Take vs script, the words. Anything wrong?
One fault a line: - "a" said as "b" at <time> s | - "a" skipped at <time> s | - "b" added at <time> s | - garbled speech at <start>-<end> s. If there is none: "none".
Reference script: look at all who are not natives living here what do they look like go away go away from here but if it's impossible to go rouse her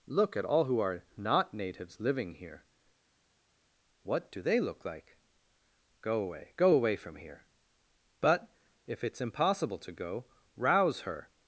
none